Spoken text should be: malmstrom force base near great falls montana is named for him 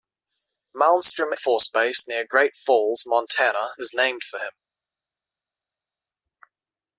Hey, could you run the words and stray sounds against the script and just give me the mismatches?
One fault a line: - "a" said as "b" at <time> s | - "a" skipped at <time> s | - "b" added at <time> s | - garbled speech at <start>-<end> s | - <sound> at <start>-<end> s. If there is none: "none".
none